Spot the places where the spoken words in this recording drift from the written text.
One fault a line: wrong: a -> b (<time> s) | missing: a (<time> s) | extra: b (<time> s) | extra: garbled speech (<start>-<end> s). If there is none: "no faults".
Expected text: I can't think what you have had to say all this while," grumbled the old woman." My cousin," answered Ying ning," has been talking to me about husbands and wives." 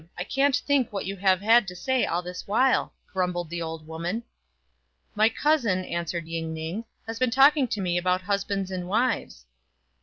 no faults